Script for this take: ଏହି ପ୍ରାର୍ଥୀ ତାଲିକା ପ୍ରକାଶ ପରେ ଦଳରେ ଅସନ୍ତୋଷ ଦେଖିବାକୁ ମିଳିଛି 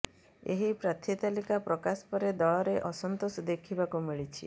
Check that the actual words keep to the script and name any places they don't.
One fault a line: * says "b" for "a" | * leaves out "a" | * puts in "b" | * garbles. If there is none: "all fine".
all fine